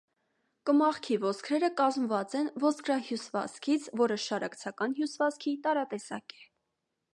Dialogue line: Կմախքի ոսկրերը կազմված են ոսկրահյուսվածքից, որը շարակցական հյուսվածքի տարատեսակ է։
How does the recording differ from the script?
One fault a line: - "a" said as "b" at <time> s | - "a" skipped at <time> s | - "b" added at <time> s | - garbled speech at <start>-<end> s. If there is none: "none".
none